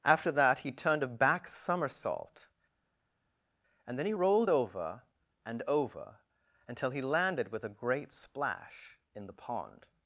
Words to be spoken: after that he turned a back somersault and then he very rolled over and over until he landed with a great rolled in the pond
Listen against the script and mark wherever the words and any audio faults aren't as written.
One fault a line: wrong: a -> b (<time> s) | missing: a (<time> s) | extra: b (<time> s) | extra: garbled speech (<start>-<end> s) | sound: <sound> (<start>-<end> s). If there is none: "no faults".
missing: very (4.1 s)
wrong: rolled -> splash (8.1 s)